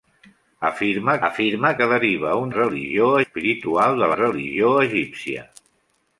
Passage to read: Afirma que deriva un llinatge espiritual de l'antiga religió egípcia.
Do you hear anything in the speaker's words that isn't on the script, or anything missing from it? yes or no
yes